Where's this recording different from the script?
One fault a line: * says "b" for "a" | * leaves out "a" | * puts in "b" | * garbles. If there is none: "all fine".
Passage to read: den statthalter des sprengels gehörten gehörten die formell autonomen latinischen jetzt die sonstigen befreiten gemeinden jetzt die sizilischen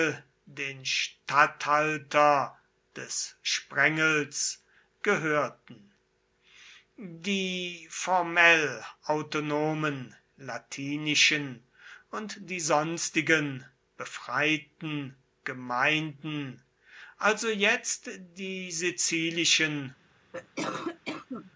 * leaves out "gehörten"
* says "und" for "jetzt"
* puts in "also"